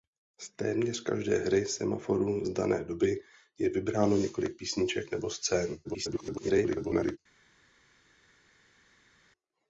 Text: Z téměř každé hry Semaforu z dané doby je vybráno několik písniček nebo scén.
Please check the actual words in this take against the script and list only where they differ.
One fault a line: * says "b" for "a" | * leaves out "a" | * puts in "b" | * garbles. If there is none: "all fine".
* garbles